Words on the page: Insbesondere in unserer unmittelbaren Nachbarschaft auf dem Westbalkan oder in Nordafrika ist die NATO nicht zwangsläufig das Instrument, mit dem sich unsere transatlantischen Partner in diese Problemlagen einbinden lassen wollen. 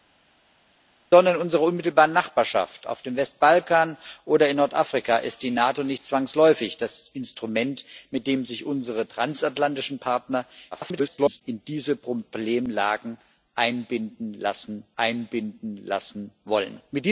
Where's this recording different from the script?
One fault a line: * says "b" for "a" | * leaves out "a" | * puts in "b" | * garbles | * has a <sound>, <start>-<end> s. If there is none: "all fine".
* garbles
* puts in "einbinden lassen"